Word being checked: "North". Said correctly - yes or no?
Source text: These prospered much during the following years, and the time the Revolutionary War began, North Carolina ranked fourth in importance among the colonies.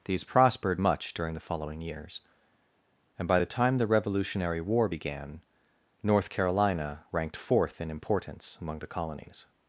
yes